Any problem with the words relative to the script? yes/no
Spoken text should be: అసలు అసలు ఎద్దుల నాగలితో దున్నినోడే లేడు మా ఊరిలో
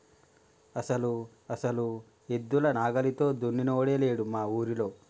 no